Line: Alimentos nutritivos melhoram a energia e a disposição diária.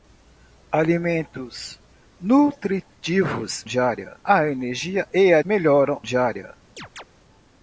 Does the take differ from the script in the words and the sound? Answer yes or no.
yes